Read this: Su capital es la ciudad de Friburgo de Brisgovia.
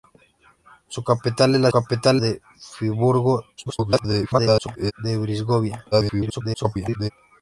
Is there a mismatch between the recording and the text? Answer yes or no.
yes